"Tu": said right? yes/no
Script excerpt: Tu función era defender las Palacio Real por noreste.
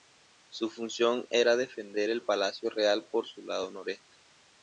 no